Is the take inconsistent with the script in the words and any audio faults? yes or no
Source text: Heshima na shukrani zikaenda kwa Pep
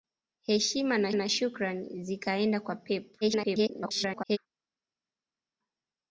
yes